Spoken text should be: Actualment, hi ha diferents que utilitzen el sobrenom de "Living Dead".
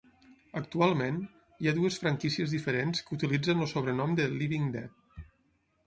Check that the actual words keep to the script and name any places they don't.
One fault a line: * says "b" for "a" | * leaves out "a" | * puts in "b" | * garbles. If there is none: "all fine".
* puts in "dues franquícies"